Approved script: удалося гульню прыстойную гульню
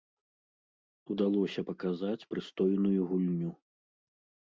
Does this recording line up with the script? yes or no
no